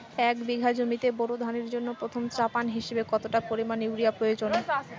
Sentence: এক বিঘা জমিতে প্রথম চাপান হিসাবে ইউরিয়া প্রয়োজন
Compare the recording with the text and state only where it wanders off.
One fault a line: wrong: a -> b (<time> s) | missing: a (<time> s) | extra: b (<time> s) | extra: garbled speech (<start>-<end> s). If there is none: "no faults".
extra: বোরো ধানের জন্য (1.2 s)
extra: কতটা পরিমাণ (3.1 s)